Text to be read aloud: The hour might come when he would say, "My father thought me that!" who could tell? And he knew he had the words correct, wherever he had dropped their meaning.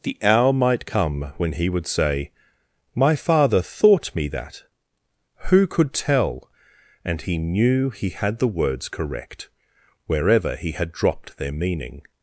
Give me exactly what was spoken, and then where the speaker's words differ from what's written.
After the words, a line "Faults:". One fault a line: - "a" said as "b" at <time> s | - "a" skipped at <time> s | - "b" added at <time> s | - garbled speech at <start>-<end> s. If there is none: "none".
The hour might come when he would say, "My father thought me that!" who could tell? And he knew he had the words correct, wherever he had dropped their meaning.
Faults:
none